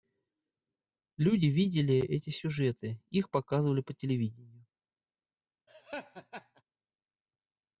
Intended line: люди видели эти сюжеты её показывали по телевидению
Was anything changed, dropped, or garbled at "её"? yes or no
yes